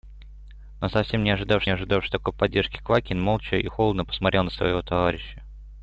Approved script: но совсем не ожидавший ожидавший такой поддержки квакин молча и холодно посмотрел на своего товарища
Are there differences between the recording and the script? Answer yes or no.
no